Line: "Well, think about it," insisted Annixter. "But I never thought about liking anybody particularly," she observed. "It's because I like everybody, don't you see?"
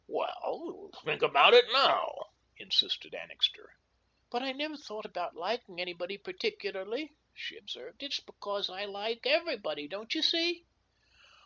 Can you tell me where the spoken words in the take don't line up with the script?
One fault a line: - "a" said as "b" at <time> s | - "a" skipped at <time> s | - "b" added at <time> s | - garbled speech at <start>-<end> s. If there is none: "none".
- "now" added at 1.7 s